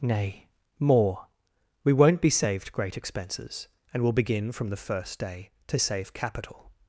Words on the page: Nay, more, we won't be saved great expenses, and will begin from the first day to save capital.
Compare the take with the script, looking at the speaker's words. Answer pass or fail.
pass